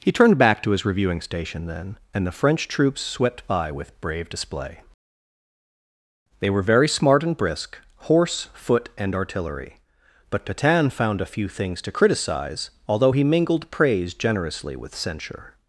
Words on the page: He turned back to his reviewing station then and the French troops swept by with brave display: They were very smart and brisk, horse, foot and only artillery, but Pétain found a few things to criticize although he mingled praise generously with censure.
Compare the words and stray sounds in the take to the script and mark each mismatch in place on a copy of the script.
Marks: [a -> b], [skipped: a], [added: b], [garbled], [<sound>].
He turned back to his reviewing station then and the French troops swept by with brave display: They were very smart and brisk, horse, foot and [skipped: only] artillery, but Pétain found a few things to criticize although he mingled praise generously with censure.